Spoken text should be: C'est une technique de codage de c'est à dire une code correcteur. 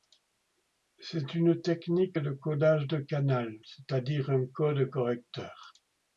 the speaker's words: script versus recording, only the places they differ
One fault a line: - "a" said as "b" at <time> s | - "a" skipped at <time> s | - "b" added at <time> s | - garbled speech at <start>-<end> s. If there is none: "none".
- "canal" added at 3.0 s
- "une" said as "un" at 4.3 s